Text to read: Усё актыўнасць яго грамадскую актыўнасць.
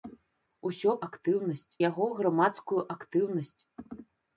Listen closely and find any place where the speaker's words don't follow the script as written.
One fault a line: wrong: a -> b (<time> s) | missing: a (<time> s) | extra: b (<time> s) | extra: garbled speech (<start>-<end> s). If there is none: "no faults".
no faults